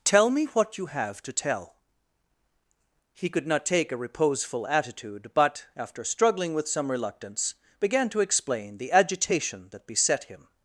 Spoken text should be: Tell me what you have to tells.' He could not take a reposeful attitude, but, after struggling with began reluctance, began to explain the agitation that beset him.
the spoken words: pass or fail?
fail